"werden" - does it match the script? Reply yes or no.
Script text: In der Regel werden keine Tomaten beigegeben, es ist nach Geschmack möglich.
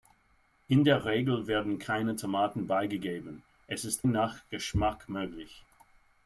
yes